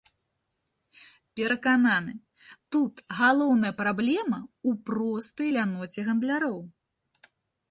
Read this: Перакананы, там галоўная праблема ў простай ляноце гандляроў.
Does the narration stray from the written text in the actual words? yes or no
yes